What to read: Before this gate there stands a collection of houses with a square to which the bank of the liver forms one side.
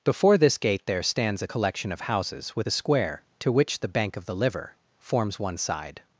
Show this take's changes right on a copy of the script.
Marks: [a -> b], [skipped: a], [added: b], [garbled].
Before this gate there stands a collection of houses with a square to which the bank of the liver forms one side.